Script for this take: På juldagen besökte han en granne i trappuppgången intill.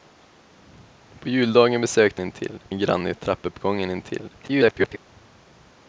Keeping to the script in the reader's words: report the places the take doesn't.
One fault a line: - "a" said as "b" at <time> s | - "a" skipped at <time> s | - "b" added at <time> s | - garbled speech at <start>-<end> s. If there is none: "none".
- "han" said as "intill" at 2.2 s
- garbled speech at 4.4-5.0 s